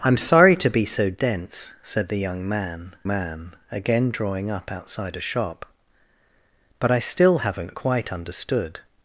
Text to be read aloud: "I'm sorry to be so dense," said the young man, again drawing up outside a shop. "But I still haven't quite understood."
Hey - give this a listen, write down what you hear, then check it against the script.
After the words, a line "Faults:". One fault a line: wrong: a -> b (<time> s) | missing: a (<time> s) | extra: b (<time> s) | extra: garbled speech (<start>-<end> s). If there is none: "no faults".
"I'm sorry to be so dense," said the young man man, again drawing up outside a shop. "But I still haven't quite understood."
Faults:
extra: man (3.1 s)